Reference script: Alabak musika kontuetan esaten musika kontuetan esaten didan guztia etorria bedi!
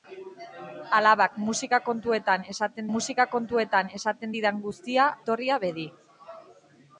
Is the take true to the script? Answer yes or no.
yes